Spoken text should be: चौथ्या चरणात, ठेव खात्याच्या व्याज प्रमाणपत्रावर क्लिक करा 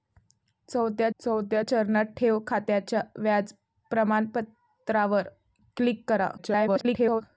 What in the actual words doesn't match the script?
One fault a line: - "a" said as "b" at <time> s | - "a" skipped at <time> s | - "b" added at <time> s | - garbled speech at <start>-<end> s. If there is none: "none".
- "चौथ्या" added at 1.2 s
- garbled speech at 6.4-7.2 s